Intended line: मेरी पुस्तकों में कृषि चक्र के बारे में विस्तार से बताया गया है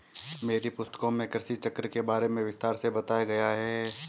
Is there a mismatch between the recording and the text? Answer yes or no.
no